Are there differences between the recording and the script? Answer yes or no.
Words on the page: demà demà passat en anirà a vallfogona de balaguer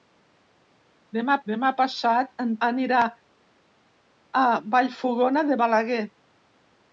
no